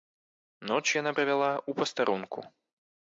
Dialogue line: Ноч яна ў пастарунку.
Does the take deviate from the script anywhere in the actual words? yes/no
yes